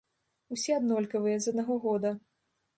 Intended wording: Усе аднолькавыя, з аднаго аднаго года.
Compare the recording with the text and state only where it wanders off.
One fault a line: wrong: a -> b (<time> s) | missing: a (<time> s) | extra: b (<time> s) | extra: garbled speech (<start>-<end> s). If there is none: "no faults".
missing: аднаго (1.8 s)